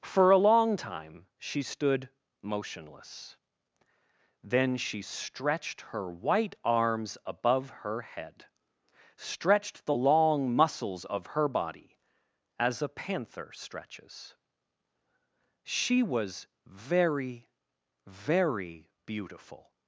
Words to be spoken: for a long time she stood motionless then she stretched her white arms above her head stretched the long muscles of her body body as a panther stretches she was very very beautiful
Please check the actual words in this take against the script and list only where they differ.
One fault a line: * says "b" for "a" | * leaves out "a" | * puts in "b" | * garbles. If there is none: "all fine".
* leaves out "body"